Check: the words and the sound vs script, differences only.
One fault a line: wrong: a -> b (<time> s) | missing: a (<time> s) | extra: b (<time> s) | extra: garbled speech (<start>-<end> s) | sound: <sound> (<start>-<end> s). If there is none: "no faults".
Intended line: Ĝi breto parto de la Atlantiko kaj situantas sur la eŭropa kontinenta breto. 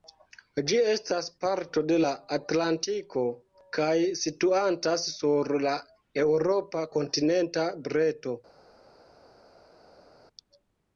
wrong: breto -> estas (0.9 s)